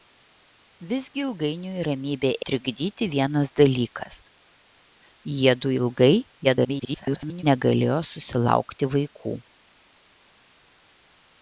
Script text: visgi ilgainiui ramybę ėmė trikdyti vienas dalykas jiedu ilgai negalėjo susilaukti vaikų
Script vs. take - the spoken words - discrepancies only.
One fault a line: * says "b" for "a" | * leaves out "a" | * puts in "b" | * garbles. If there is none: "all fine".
* leaves out "ėmė"
* garbles